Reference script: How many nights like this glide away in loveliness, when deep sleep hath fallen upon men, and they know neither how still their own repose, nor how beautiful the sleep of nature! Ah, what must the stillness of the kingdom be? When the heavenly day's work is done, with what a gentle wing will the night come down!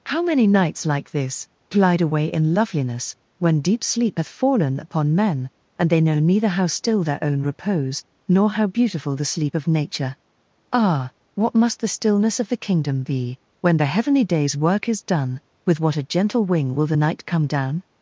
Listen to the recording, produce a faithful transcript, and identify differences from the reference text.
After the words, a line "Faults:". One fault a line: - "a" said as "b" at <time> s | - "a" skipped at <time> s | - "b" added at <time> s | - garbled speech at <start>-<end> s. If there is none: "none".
How many nights like this glide away in loveliness, when deep sleep hath fallen upon men, and they know neither how still their own repose, nor how beautiful the sleep of nature! Ah, what must the stillness of the kingdom be? When the heavenly day's work is done, with what a gentle wing will the night come down!
Faults:
none